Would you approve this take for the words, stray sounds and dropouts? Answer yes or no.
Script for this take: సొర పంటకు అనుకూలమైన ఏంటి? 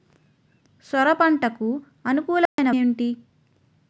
no